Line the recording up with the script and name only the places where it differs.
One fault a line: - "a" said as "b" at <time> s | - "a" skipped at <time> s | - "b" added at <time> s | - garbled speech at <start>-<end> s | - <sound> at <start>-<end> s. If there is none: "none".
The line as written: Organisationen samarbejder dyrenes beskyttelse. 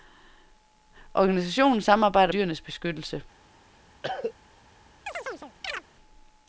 - cough at 4.0-4.3 s
- chirp at 5.1-5.8 s